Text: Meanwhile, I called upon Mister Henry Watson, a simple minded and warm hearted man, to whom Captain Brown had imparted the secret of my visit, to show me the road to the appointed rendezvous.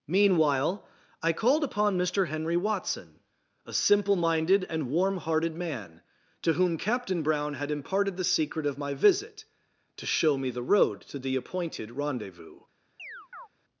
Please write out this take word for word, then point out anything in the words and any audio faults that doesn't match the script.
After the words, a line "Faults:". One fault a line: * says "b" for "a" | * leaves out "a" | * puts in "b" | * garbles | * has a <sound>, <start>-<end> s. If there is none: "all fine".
Meanwhile, I called upon Mister Henry Watson, a simple minded and warm hearted man, to whom Captain Brown had imparted the secret of my visit, to show me the road to the appointed rendezvous.
Faults:
* has a chirp, 13.0-13.5 s